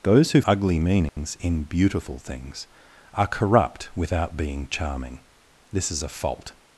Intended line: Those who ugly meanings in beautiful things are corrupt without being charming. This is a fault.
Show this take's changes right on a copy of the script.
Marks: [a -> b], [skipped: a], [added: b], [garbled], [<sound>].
Those who ugly meanings [dropout] in beautiful things are corrupt without being charming. This is a fault.